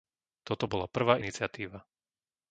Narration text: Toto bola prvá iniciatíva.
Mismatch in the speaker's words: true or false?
false